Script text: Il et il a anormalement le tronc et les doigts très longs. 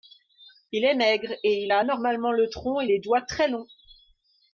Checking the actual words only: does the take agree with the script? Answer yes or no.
no